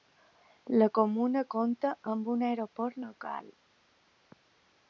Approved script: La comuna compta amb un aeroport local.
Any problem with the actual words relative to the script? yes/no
no